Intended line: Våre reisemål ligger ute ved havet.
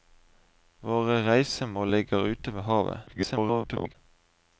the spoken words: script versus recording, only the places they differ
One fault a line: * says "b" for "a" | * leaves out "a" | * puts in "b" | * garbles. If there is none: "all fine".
* garbles